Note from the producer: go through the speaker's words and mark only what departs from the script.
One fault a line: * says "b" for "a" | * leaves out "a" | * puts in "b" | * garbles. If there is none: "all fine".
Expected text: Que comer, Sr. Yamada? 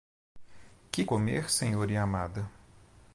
all fine